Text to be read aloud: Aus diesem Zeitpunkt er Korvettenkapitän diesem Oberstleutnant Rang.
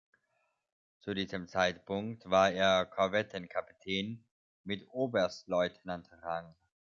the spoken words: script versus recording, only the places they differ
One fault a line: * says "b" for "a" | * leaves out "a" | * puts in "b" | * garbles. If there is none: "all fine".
* says "Zu" for "Aus"
* puts in "war"
* says "mit" for "diesem"